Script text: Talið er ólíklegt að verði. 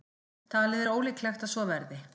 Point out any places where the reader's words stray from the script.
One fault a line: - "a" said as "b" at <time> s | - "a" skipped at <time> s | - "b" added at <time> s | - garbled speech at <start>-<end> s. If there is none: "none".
- "svo" added at 1.5 s